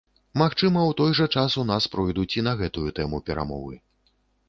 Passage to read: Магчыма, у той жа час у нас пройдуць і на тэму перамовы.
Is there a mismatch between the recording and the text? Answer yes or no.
yes